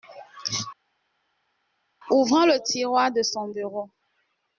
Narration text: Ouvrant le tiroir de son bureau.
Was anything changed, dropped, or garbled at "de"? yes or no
no